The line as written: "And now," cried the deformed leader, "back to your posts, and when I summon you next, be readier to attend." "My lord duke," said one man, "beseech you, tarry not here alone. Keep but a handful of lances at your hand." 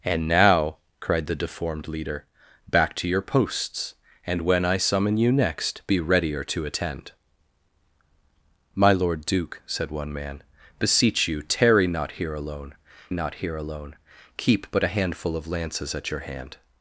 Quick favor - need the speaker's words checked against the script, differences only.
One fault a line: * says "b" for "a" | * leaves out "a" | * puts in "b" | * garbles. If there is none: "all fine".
* puts in "not here alone"